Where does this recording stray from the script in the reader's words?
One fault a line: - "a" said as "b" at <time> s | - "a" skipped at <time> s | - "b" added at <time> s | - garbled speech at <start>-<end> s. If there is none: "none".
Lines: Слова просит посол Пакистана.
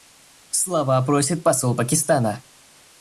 none